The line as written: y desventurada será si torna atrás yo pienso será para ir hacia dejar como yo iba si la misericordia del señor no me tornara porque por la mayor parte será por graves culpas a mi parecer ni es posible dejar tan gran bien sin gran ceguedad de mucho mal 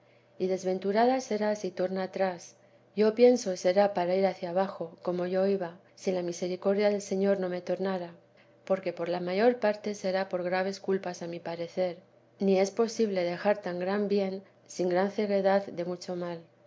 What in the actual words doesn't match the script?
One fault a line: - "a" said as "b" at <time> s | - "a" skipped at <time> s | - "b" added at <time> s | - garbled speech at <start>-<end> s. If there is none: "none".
- "dejar" said as "abajo" at 4.5 s